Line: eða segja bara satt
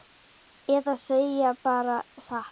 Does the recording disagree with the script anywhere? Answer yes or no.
no